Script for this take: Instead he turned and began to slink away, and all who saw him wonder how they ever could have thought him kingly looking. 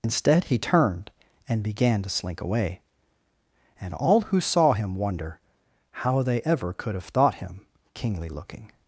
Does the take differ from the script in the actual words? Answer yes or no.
no